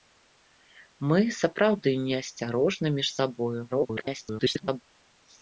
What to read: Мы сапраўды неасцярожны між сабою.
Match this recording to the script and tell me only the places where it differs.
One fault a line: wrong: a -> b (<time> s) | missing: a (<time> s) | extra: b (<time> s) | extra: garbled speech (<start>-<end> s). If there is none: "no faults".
extra: garbled speech (3.7-4.8 s)